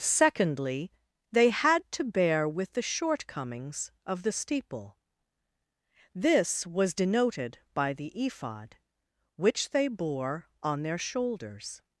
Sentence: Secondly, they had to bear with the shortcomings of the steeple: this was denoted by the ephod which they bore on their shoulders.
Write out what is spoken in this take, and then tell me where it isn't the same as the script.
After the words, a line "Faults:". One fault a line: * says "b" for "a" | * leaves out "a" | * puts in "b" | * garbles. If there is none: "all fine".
Secondly, they had to bear with the shortcomings of the steeple: this was denoted by the ephod which they bore on their shoulders.
Faults:
all fine